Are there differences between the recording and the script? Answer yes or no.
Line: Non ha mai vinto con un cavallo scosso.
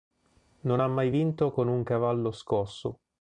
no